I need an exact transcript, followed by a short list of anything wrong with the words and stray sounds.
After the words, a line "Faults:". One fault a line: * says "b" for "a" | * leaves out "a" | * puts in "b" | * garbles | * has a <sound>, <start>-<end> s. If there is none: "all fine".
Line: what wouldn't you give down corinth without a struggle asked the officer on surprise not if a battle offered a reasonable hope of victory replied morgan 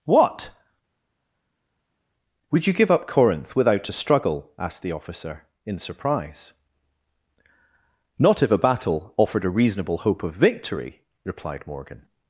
what would you give up corinth without a struggle asked the officer in surprise not if a battle offered a reasonable hope of victory replied morgan
Faults:
* says "would" for "wouldn't"
* says "up" for "down"
* says "in" for "on"